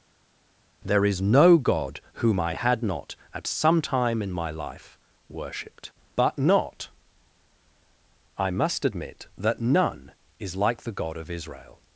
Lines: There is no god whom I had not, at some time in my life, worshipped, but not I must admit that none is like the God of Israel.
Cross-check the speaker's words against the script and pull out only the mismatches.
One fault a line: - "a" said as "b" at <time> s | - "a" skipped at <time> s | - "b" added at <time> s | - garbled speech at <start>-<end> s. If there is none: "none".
none